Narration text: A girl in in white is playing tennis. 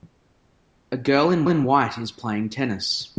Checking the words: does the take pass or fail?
pass